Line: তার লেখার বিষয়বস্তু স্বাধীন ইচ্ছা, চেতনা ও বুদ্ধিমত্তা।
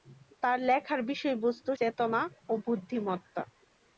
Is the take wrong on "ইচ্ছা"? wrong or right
wrong